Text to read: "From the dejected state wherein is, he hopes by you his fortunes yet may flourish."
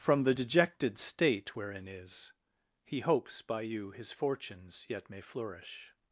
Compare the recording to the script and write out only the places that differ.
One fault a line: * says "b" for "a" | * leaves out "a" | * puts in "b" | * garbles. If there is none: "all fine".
all fine